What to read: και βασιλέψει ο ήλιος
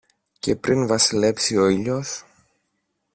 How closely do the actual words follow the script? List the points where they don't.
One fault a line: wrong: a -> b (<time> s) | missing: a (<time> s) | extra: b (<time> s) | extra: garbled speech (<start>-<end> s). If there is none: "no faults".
extra: πριν (0.6 s)